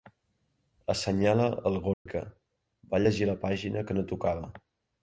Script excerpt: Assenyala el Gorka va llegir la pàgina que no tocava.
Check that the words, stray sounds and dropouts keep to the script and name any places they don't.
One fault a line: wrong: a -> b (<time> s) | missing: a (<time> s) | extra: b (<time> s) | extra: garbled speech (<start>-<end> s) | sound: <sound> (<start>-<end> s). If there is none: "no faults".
sound: dropout (1.9-2.1 s)